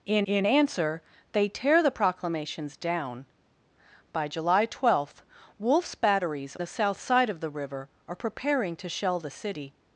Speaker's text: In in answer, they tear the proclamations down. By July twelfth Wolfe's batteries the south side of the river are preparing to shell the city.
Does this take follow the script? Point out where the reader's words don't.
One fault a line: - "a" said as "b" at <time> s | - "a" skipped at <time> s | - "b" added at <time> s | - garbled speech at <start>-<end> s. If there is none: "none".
none